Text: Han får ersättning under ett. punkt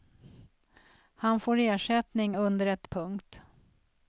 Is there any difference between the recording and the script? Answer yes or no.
no